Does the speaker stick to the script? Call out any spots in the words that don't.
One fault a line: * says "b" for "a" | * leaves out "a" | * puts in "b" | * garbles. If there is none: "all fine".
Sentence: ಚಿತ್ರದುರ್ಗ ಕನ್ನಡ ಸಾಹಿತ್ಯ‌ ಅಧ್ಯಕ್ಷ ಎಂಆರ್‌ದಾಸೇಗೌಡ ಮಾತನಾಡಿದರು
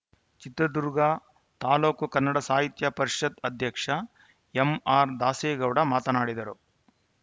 * puts in "ತಾಲೂಕು"
* puts in "ಪರಿಷತ್"